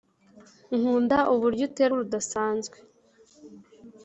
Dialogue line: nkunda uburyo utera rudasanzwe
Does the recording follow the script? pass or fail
pass